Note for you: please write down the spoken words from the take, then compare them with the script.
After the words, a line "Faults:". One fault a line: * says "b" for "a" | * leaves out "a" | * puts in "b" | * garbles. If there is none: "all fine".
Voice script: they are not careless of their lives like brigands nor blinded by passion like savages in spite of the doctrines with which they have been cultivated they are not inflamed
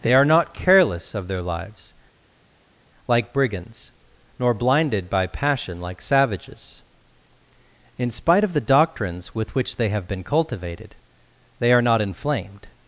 they are not careless of their lives like brigands nor blinded by passion like savages in spite of the doctrines with which they have been cultivated they are not inflamed
Faults:
all fine